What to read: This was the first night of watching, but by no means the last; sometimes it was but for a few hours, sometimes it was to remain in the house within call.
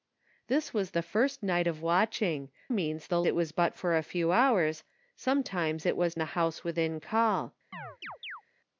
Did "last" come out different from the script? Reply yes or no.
yes